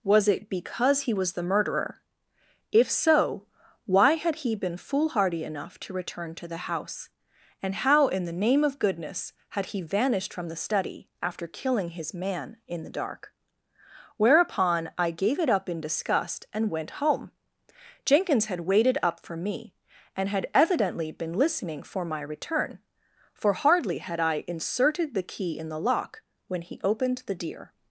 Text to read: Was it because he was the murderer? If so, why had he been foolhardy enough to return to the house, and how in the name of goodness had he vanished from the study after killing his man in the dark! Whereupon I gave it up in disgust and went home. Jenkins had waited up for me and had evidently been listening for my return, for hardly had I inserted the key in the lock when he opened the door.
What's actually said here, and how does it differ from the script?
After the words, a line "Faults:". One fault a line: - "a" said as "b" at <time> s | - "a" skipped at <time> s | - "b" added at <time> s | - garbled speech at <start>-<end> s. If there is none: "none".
Was it because he was the murderer? If so, why had he been foolhardy enough to return to the house, and how in the name of goodness had he vanished from the study after killing his man in the dark! Whereupon I gave it up in disgust and went home. Jenkins had waited up for me and had evidently been listening for my return, for hardly had I inserted the key in the lock when he opened the deer.
Faults:
- "door" said as "deer" at 27.4 s